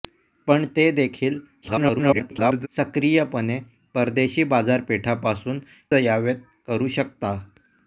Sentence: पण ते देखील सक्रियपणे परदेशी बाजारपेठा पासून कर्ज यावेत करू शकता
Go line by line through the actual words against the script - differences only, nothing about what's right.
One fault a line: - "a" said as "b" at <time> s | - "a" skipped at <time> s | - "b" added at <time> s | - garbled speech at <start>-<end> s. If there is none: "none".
- garbled speech at 1.6-2.7 s
- "कर्ज" skipped at 5.6 s